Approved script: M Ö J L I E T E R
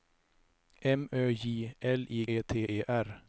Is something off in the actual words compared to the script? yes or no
no